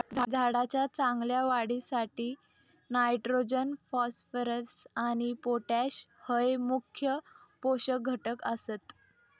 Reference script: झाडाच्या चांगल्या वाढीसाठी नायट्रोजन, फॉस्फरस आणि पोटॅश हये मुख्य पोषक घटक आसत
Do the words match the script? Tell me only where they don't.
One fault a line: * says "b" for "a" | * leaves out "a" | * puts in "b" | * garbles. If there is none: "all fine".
all fine